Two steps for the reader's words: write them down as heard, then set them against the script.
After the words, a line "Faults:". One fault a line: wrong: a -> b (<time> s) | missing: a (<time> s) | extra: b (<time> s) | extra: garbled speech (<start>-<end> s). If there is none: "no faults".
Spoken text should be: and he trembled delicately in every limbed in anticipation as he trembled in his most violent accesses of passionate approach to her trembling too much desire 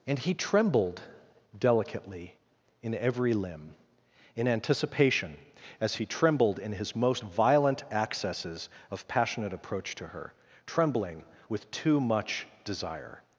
and he trembled delicately in every limb in anticipation as he trembled in his most violent accesses of passionate approach to her trembling with too much desire
Faults:
wrong: limbed -> limb (3.3 s)
extra: with (11.5 s)